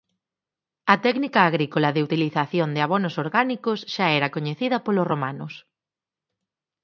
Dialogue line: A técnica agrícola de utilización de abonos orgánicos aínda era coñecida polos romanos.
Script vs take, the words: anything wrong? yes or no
yes